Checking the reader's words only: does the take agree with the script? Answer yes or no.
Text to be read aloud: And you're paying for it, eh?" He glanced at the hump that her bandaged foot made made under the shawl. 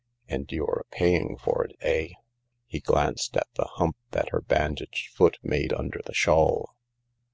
no